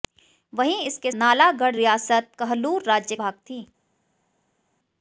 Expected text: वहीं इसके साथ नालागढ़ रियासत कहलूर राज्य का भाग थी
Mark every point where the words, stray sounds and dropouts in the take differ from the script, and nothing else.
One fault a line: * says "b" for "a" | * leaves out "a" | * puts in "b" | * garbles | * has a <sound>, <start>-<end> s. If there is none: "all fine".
* leaves out "साथ"
* leaves out "का"